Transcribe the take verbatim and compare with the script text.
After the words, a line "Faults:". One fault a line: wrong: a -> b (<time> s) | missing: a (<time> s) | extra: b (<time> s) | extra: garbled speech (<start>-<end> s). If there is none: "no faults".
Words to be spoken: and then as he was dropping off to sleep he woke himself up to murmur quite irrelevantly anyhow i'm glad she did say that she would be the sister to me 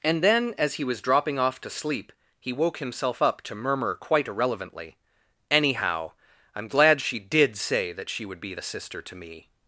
and then as he was dropping off to sleep he woke himself up to murmur quite irrelevantly anyhow i'm glad she did say that she would be the sister to me
Faults:
no faults